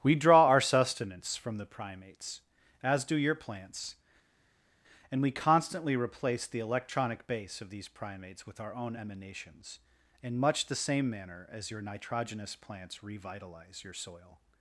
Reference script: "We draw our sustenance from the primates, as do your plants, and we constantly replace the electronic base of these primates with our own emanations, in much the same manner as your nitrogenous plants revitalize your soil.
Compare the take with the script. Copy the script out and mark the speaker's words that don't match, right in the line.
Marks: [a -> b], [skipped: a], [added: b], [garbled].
"We draw our sustenance from the primates, as do your plants, and we constantly replace the electronic base of these primates with our own emanations, in much the same manner as your nitrogenous plants revitalize your soil.